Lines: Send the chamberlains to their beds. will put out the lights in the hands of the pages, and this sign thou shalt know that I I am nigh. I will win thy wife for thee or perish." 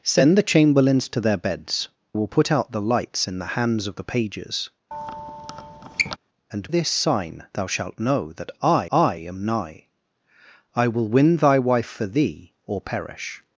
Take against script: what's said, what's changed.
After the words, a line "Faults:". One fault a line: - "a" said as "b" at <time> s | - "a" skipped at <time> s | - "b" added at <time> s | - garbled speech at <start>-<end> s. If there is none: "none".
Send the chamberlains to their beds. will put out the lights in the hands of the pages, and this sign thou shalt know that I I am nigh. I will win thy wife for thee or perish."
Faults:
none